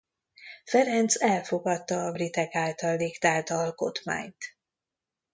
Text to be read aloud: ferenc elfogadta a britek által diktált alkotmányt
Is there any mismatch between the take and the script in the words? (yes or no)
no